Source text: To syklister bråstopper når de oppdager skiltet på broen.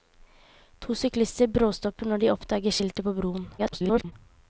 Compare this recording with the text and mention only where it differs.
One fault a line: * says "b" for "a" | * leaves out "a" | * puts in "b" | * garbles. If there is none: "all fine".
* garbles